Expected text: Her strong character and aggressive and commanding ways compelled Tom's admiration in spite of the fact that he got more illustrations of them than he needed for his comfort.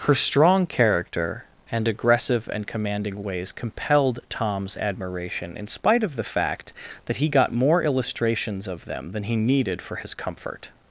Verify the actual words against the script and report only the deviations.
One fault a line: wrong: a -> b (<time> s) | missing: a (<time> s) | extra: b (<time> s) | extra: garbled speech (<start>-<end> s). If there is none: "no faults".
no faults